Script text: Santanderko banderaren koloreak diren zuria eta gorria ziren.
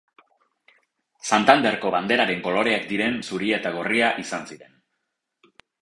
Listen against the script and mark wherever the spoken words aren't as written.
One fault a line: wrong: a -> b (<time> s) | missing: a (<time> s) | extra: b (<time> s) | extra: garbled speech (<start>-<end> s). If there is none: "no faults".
extra: izan (4.3 s)